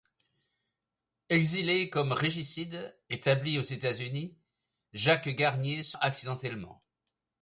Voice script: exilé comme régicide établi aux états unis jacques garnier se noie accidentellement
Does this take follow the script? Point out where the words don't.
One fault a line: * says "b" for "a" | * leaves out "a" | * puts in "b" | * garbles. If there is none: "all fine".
* leaves out "noie"